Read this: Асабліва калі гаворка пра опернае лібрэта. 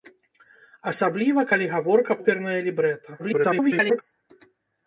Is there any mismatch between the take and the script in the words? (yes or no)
yes